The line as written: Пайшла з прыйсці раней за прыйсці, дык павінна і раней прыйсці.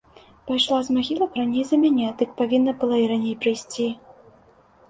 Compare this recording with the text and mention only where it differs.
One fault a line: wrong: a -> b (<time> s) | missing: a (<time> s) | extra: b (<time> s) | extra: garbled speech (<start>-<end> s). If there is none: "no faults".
wrong: прыйсці -> магілак (0.9 s)
wrong: прыйсці -> мяне (1.8 s)
extra: была (2.8 s)